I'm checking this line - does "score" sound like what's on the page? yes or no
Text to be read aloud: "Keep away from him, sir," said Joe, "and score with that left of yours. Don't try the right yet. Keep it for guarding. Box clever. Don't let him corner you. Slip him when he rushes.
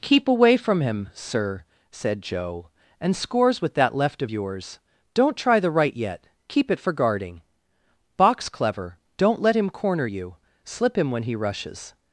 no